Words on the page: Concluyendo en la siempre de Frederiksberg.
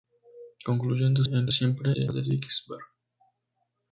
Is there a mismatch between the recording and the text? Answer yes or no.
no